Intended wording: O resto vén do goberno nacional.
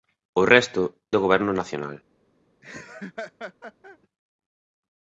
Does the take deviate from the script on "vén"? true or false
true